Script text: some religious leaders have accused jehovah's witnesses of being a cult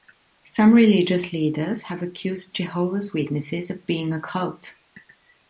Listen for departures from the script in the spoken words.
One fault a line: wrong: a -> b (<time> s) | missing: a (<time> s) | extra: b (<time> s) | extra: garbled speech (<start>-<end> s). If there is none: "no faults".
no faults